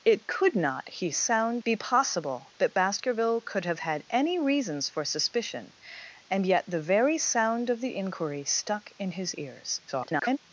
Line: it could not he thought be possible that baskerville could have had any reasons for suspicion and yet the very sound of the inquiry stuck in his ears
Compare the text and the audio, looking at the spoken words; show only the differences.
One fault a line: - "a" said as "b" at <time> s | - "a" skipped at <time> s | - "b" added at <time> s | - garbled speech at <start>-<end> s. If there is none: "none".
- "thought" said as "sound" at 1.1 s
- garbled speech at 9.9-10.4 s